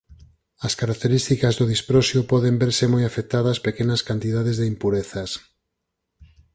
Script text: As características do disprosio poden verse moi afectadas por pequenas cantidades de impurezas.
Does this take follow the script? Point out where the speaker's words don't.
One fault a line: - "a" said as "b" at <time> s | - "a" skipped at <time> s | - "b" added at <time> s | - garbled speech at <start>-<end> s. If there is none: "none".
- "por" skipped at 3.6 s